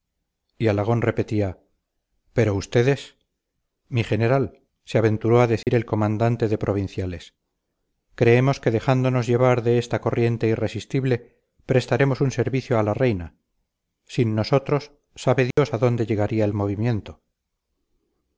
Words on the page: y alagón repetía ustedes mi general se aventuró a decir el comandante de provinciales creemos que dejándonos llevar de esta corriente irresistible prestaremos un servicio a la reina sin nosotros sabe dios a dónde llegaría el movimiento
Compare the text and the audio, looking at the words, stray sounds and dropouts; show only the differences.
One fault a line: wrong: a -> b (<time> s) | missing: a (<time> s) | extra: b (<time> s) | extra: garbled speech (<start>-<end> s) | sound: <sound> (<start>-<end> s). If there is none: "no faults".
extra: pero (2.3 s)
sound: dropout (5.6-5.7 s)
sound: dropout (15.5-15.6 s)